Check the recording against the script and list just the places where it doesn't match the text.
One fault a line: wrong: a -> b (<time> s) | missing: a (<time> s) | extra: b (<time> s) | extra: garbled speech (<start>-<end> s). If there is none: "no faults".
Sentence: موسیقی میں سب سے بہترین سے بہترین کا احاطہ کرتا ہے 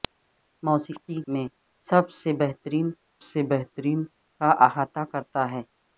no faults